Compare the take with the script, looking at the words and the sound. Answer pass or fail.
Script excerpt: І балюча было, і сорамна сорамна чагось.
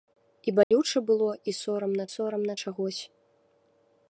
fail